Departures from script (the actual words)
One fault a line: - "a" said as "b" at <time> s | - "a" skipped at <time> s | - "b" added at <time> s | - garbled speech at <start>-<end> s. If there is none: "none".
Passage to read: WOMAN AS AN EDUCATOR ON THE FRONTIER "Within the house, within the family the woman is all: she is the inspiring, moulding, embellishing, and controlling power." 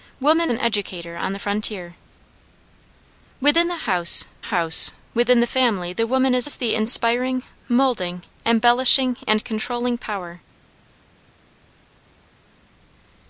- "AS" skipped at 0.5 s
- "house" added at 4.5 s
- "all she" skipped at 6.5 s